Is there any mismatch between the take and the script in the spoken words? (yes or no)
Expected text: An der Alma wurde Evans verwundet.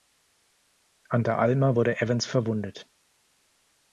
no